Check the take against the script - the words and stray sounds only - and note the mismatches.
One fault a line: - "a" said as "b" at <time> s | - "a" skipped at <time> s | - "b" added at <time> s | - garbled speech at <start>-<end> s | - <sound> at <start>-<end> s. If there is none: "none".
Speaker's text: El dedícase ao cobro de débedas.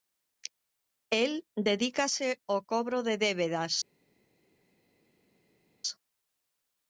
none